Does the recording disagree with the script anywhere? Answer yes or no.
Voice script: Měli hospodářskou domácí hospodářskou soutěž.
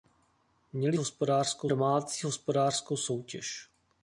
no